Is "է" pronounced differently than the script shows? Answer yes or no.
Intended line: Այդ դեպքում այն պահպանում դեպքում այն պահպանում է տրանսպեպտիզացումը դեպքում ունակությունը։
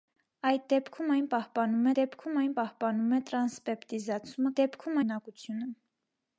no